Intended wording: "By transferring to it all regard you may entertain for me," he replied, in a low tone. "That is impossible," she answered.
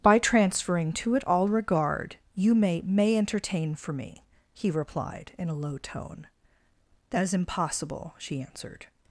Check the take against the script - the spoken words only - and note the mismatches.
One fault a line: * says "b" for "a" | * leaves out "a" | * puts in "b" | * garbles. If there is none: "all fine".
* puts in "may"